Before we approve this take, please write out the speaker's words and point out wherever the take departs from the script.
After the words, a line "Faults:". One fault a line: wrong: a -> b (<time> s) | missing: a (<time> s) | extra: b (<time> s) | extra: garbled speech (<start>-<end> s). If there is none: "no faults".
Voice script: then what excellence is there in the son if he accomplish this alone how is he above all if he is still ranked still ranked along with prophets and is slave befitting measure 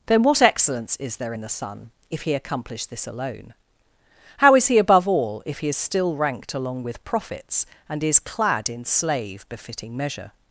then what excellence is there in the son if he accomplish this alone how is he above all if he is still ranked along with prophets and is clad in slave befitting measure
Faults:
missing: still ranked (6.5 s)
extra: clad in (8.2 s)